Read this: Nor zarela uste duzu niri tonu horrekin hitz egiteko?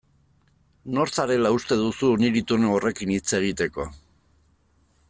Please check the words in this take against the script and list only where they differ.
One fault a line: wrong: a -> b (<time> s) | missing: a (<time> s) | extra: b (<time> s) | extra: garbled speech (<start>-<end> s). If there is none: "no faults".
no faults